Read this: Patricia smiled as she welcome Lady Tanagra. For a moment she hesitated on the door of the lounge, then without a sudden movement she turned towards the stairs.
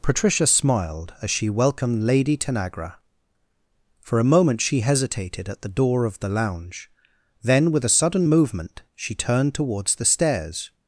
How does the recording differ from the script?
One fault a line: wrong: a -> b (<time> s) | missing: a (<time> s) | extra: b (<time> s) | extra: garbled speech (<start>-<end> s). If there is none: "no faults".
wrong: welcome -> welcomed (1.5 s)
wrong: on -> at (5.5 s)
wrong: without -> with (7.7 s)